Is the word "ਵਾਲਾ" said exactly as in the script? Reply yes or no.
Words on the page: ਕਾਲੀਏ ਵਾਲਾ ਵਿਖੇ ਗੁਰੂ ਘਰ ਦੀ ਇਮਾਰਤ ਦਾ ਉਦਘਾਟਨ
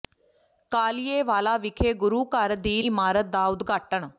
yes